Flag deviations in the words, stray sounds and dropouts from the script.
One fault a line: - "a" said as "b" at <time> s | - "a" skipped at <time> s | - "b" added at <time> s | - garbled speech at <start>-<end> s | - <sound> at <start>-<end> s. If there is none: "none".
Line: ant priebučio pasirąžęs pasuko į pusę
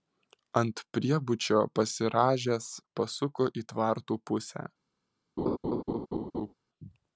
- "tvartų" added at 3.7 s
- laugh at 5.4-6.5 s